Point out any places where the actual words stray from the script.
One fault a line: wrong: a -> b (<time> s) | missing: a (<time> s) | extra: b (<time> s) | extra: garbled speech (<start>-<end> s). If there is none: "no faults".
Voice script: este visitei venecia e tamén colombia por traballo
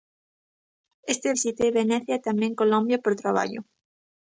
no faults